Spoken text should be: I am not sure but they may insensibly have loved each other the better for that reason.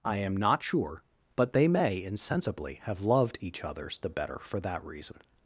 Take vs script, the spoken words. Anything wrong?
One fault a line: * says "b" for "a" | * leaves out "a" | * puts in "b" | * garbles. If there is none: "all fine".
* says "others" for "other"